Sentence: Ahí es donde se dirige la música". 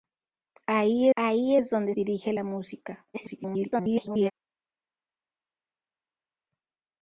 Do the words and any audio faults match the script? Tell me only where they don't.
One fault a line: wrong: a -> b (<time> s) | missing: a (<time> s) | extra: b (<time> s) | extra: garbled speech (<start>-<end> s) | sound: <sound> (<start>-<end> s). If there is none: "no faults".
extra: ahí (1.1 s)
missing: se (1.9 s)
extra: garbled speech (3.1-4.3 s)